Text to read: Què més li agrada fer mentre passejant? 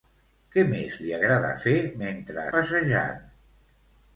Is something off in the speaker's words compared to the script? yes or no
no